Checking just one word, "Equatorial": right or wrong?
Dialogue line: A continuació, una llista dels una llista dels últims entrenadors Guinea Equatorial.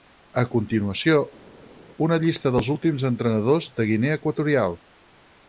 right